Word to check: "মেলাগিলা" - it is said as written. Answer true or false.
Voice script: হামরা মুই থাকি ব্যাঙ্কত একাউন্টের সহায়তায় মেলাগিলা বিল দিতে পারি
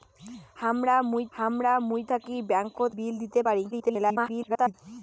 false